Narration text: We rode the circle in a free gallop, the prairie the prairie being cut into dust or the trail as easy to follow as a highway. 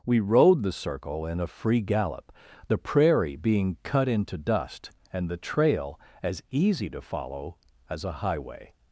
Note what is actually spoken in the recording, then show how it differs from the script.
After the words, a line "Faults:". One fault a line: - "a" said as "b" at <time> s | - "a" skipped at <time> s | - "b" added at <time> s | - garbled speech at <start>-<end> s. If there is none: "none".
We rode the circle in a free gallop, the prairie being cut into dust and the trail as easy to follow as a highway.
Faults:
- "the prairie" skipped at 3.4 s
- "or" said as "and" at 5.1 s